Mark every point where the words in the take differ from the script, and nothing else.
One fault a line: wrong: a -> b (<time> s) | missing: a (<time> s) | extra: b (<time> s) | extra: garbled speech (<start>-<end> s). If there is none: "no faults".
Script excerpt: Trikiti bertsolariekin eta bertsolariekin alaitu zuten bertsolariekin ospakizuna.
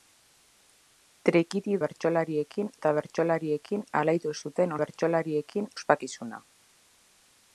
no faults